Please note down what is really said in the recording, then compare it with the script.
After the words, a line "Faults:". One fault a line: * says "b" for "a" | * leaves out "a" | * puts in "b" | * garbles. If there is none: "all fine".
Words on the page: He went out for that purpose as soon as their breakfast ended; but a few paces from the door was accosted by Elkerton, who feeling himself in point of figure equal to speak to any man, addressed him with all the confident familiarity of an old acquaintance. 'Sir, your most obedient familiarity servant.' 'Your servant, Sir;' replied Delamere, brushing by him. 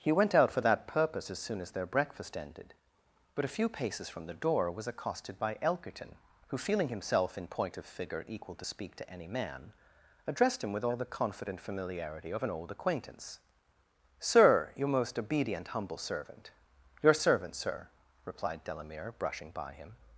He went out for that purpose as soon as their breakfast ended; but a few paces from the door was accosted by Elkerton, who feeling himself in point of figure equal to speak to any man, addressed him with all the confident familiarity of an old acquaintance. 'Sir, your most obedient humble servant.' 'Your servant, Sir;' replied Delamere, brushing by him.
Faults:
* says "humble" for "familiarity"